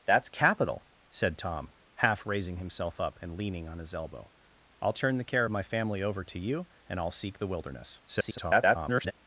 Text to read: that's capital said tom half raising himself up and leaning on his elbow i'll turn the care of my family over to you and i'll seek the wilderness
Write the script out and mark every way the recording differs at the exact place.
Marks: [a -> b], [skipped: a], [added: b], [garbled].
that's capital said tom half raising himself up and leaning on his elbow i'll turn the care of my family over to you and i'll seek the wilderness [garbled]